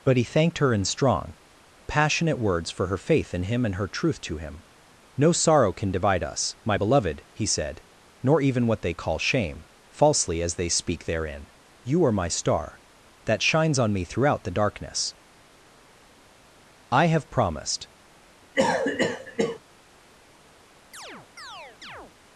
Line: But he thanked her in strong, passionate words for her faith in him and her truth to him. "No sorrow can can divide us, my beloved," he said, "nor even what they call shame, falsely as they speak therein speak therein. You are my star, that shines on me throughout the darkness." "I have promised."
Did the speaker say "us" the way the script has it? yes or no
yes